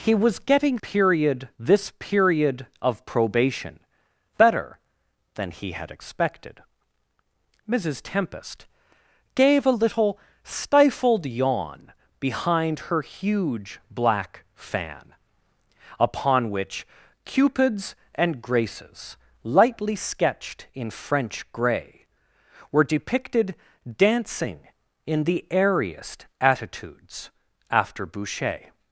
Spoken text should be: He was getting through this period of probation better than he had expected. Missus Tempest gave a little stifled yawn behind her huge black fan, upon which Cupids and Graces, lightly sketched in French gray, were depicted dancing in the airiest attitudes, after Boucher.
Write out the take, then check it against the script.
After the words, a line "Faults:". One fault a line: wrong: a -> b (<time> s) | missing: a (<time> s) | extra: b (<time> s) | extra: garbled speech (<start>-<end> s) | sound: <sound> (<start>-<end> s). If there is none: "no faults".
He was getting period this period of probation better than he had expected. Missus Tempest gave a little stifled yawn behind her huge black fan, upon which Cupids and Graces, lightly sketched in French gray, were depicted dancing in the airiest attitudes, after Boucher.
Faults:
wrong: through -> period (0.8 s)